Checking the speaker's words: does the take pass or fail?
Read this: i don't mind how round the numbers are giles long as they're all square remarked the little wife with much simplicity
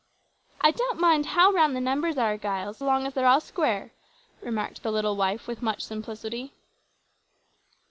pass